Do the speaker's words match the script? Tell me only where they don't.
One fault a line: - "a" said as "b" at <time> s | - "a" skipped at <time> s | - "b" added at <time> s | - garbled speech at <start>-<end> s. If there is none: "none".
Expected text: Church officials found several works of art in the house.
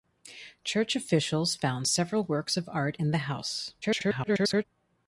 - garbled speech at 3.8-4.7 s